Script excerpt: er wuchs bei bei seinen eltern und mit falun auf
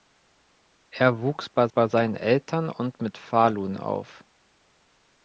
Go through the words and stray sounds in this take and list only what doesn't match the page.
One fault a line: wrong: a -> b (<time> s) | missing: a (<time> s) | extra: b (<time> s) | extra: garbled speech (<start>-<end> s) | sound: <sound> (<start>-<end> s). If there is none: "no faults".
no faults